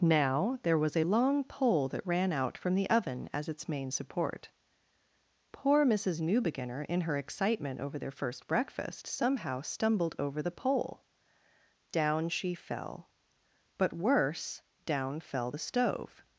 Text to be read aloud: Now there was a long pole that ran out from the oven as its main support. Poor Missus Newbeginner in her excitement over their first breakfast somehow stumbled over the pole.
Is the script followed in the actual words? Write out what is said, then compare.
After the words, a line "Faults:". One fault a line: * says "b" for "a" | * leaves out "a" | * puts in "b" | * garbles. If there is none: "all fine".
Now there was a long pole that ran out from the oven as its main support. Poor Missus Newbeginner in her excitement over their first breakfast somehow stumbled over the pole. Down she fell. But worse, down fell the stove
Faults:
* puts in "Down she fell But worse down fell the stove"